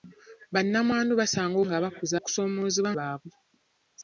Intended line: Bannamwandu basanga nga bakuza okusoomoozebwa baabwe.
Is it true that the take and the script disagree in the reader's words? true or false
false